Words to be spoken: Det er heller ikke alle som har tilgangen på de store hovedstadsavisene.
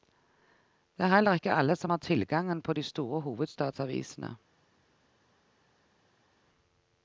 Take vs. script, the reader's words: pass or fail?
pass